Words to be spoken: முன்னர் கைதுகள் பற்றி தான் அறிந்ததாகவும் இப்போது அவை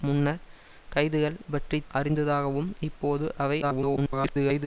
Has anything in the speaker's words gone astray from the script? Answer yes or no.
yes